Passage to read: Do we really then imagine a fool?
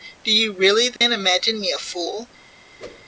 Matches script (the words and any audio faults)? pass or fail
fail